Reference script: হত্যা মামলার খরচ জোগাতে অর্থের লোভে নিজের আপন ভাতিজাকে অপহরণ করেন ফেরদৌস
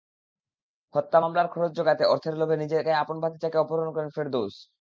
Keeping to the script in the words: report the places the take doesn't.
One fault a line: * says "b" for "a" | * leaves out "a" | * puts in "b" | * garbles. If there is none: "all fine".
all fine